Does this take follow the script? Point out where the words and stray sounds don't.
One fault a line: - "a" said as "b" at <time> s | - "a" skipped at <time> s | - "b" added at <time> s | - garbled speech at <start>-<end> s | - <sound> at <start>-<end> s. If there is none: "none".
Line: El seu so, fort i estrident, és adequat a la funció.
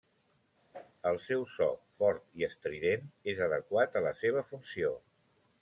- whoosh at 0.7-0.9 s
- "seva" added at 4.2 s